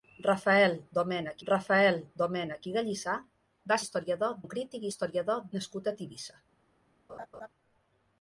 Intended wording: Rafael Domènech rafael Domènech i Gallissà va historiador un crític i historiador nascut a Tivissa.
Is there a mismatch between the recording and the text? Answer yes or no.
no